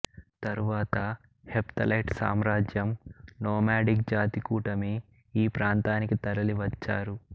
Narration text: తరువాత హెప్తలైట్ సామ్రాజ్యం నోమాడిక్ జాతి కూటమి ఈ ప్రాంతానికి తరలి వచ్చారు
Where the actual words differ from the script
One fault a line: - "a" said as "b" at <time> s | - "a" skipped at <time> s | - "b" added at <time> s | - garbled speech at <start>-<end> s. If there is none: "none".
none